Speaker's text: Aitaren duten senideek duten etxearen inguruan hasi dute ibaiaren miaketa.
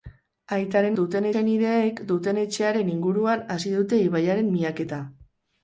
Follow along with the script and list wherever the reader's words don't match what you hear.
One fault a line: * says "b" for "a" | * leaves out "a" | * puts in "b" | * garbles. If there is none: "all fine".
all fine